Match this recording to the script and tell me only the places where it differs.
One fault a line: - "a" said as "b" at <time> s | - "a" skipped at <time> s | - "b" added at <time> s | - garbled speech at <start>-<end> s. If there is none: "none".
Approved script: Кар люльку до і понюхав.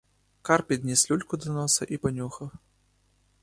- "підніс" added at 0.6 s
- "носа" added at 1.5 s